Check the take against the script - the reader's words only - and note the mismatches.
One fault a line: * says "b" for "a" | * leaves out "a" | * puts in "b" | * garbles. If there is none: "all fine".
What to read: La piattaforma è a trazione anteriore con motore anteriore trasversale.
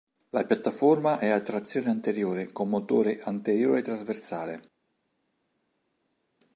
all fine